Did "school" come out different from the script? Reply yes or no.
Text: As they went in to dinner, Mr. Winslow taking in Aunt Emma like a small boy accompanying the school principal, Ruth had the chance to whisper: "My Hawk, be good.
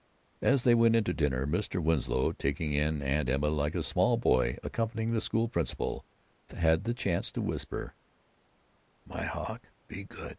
no